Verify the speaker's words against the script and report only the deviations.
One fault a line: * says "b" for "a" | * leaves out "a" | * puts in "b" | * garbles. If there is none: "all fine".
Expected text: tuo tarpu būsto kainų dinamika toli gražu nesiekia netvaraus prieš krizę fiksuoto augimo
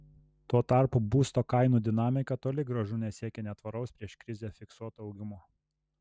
all fine